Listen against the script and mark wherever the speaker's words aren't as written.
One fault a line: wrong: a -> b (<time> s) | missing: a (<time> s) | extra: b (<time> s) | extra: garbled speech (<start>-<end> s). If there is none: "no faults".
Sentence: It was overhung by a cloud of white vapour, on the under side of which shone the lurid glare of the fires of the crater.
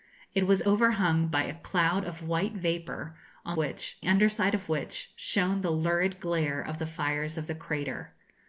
wrong: the -> which (3.6 s)